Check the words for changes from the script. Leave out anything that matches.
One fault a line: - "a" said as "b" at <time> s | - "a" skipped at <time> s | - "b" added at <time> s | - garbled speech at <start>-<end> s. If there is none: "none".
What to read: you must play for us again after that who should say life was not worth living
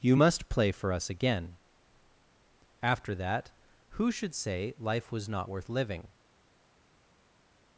none